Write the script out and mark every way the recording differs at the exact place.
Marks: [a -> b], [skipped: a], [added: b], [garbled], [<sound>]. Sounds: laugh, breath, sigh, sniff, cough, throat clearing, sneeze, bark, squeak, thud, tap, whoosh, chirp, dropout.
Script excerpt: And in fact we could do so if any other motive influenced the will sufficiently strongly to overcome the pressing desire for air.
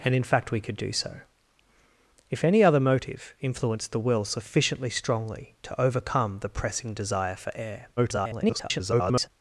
And in fact we could do so if any other motive influenced the will sufficiently strongly to overcome the pressing desire for air. [garbled]